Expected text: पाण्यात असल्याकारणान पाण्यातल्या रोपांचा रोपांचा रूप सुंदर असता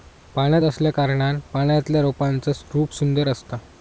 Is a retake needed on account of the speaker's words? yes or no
yes